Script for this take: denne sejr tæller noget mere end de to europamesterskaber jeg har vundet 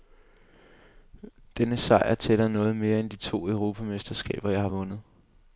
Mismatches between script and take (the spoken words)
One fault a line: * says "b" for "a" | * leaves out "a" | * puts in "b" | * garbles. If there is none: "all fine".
all fine